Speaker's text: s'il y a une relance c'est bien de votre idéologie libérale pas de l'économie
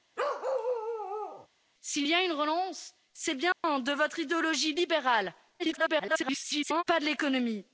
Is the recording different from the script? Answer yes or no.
yes